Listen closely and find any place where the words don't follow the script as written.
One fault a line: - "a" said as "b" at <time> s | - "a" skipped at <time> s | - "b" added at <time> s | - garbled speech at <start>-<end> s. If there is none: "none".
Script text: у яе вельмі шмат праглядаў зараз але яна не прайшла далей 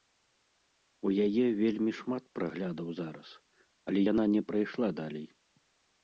none